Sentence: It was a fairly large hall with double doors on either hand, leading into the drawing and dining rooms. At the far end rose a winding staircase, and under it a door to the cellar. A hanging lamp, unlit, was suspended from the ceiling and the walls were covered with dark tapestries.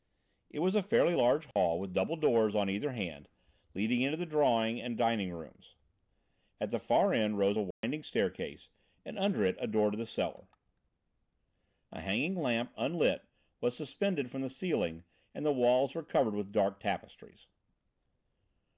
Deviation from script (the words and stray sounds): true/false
true